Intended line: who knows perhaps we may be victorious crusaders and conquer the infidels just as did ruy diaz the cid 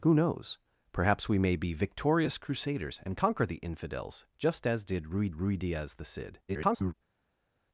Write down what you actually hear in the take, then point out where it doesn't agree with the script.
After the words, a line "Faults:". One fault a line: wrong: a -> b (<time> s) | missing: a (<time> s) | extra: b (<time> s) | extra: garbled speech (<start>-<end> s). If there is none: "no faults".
who knows perhaps we may be victorious crusaders and conquer the infidels just as did ruy ruy diaz the cid [garbled]
Faults:
extra: ruy (5.3 s)
extra: garbled speech (6.5-6.9 s)